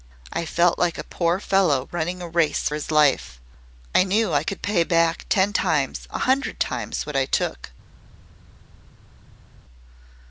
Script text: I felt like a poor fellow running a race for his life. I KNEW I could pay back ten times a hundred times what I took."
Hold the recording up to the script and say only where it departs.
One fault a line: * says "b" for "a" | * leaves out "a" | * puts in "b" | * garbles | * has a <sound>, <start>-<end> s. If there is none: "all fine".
* leaves out "for"